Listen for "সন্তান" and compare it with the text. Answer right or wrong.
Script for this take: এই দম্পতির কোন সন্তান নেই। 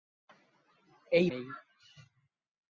wrong